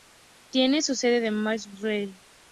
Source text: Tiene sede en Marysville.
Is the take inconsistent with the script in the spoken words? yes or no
yes